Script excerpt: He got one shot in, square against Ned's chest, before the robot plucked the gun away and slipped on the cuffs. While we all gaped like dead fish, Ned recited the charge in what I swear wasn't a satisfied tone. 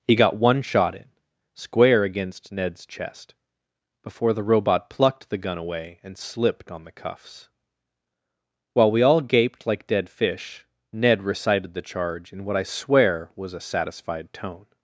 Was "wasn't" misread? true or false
true